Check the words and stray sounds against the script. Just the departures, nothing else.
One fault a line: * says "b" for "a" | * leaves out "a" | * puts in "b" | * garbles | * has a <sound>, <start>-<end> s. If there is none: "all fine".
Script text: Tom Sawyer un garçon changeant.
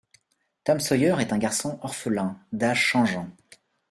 * puts in "est"
* puts in "orphelin d'âge"